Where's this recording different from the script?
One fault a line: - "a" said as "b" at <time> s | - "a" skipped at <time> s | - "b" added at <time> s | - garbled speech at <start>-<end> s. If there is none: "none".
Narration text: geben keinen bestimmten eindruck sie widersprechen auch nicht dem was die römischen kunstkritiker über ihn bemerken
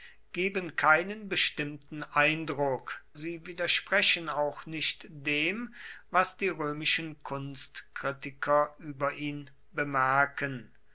none